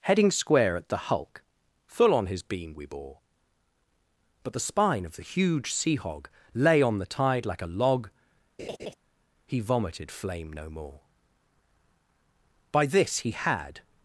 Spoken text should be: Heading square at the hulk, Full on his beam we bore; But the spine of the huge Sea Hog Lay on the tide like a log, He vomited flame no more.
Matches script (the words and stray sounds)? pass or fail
fail